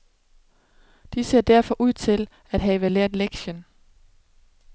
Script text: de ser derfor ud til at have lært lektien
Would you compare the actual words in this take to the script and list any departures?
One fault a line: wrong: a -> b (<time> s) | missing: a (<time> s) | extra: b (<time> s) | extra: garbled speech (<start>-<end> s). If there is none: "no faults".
no faults